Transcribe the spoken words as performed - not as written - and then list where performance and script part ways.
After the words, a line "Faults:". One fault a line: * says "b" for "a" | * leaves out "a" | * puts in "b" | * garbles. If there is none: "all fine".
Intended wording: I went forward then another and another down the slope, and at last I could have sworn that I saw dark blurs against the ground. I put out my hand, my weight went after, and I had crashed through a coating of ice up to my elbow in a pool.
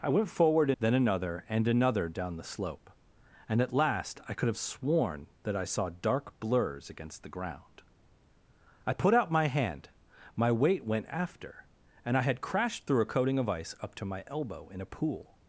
I went forward then another and another down the slope, and at last I could have sworn that I saw dark blurs against the ground. I put out my hand, my weight went after, and I had crashed through a coating of ice up to my elbow in a pool.
Faults:
all fine